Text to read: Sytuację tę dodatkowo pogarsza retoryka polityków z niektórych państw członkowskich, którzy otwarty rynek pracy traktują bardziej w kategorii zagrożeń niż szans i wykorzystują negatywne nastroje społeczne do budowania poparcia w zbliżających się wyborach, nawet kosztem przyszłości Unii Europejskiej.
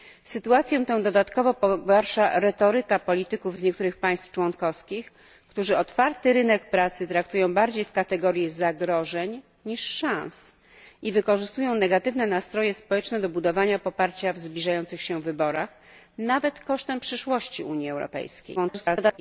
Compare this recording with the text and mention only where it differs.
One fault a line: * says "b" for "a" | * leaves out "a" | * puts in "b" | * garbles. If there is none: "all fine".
* garbles